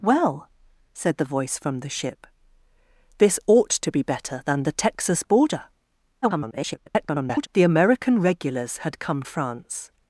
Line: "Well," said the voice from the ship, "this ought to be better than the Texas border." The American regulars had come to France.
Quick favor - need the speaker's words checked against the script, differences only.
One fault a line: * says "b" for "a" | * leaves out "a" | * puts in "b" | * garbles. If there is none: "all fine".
* garbles
* leaves out "to"